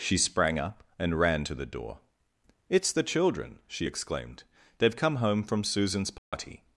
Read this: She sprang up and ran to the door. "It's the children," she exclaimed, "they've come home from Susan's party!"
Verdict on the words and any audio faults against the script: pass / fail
fail